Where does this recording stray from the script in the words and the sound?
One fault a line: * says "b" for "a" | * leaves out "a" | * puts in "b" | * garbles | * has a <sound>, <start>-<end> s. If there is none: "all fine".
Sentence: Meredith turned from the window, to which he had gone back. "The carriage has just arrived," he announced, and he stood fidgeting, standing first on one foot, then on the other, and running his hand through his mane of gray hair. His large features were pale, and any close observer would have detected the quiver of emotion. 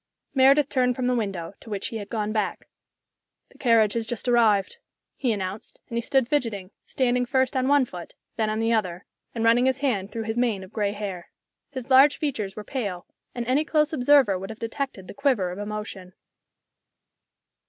all fine